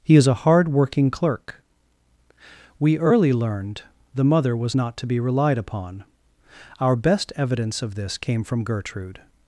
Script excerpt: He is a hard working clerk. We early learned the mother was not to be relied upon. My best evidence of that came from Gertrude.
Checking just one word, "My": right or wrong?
wrong